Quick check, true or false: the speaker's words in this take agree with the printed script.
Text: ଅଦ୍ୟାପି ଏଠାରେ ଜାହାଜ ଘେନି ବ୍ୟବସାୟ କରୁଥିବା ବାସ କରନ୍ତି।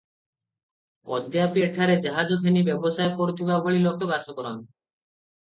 false